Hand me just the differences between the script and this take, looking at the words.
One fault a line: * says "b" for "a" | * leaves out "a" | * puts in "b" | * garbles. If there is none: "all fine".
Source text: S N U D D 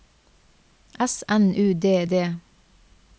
all fine